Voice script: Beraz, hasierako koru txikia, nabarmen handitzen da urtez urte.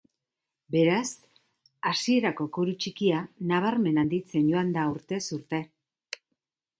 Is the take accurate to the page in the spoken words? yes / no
no